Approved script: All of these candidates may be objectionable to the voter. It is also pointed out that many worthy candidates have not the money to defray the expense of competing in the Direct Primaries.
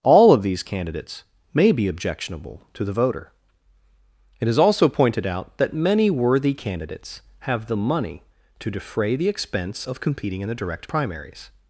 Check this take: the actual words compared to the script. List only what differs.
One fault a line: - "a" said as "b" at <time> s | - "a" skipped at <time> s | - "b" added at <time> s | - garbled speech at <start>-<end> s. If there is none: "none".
- "not" skipped at 7.7 s